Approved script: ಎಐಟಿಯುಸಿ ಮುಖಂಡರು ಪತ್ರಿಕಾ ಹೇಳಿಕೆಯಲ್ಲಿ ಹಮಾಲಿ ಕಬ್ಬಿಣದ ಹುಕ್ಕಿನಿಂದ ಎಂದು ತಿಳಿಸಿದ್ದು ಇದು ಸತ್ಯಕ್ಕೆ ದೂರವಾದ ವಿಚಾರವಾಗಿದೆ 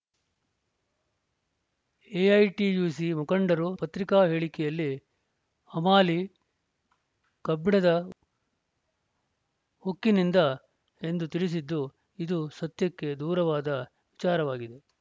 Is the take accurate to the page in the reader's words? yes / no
yes